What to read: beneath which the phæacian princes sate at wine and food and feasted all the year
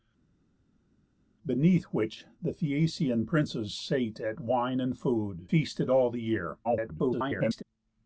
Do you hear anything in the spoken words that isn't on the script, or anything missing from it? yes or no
yes